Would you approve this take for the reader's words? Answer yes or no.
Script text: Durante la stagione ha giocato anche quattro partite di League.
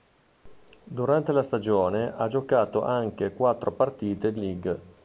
yes